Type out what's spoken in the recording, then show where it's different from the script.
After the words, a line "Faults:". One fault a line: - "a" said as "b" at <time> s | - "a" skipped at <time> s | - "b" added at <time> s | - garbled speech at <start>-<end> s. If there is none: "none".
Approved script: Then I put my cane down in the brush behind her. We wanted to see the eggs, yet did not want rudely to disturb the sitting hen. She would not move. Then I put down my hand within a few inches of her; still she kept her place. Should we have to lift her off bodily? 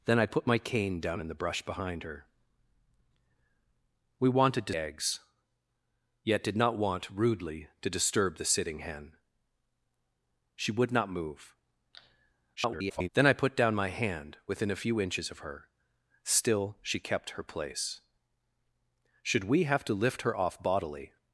Then I put my cane down in the brush behind her. We wanted to eggs, yet did not want rudely to disturb the sitting hen. She would not move. [garbled] Then I put down my hand within a few inches of her; still she kept her place. Should we have to lift her off bodily?
Faults:
- "see the" skipped at 4.8 s
- garbled speech at 12.6-13.1 s